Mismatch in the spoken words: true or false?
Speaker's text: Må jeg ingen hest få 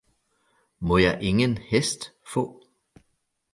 false